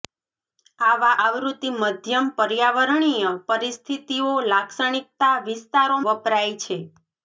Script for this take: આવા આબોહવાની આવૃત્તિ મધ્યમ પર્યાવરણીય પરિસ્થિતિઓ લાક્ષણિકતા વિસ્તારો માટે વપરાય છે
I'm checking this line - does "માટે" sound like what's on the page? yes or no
no